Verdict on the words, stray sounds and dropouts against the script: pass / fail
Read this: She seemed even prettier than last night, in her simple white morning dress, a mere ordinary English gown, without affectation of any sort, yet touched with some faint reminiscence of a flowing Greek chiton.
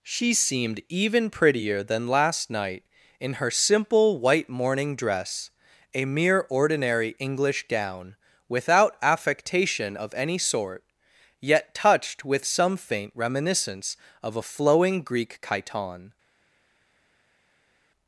pass